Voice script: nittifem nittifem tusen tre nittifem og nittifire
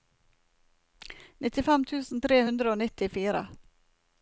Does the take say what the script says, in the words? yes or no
no